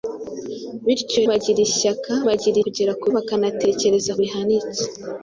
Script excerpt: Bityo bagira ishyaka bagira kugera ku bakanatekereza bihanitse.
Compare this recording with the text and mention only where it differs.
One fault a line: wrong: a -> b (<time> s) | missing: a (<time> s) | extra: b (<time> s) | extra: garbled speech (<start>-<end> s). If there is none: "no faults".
no faults